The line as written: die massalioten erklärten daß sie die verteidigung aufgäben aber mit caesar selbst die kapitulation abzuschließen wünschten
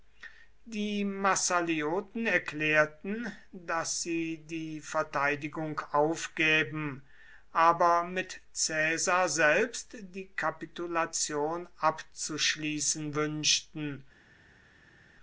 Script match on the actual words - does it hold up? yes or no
yes